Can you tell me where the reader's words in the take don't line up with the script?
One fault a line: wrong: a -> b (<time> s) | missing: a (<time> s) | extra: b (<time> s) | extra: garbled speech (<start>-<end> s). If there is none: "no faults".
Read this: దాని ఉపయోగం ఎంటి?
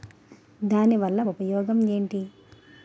extra: వల్ల (1.0 s)